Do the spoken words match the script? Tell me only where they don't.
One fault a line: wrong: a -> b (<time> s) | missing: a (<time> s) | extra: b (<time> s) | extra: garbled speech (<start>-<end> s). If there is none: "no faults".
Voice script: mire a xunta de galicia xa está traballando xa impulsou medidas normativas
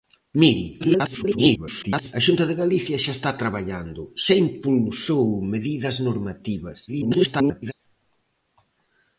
extra: garbled speech (0.8-2.1 s)
extra: garbled speech (6.9-7.7 s)